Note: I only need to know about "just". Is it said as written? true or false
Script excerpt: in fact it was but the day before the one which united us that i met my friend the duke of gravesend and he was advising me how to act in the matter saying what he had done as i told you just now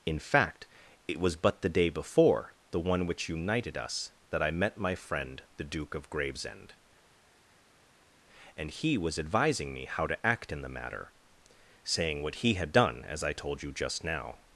true